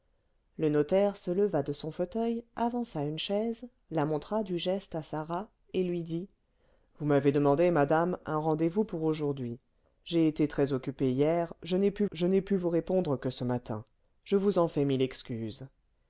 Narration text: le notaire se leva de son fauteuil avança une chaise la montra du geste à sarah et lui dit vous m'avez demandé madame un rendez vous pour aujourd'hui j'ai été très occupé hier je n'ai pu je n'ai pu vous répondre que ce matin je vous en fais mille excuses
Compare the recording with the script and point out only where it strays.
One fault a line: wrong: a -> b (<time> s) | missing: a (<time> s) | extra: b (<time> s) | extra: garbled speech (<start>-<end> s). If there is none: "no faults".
no faults